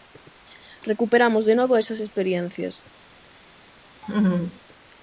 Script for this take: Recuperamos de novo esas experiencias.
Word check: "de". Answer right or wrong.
right